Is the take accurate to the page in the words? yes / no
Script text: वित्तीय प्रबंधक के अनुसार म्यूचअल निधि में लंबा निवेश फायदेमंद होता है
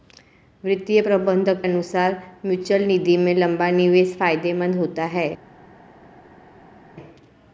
no